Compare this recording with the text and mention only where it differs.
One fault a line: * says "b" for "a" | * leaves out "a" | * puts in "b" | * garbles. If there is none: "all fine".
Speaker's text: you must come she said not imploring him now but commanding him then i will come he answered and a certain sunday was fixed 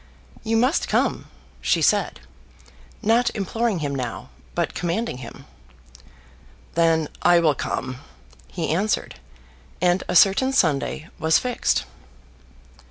all fine